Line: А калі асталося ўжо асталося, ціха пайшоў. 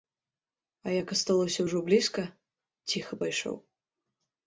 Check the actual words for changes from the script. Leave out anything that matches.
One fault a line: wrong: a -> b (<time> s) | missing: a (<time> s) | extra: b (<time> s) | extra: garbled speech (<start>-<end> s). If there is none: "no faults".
wrong: калі -> як (1.0 s)
wrong: асталося -> блізка (1.9 s)